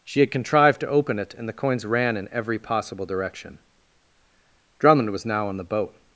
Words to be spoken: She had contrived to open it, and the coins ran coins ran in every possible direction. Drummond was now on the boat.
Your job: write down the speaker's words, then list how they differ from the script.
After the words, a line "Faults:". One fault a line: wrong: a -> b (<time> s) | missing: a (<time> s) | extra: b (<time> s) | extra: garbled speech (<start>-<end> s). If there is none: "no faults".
She had contrived to open it, and the coins ran in every possible direction. Drummond was now on the boat.
Faults:
missing: coins ran (2.2 s)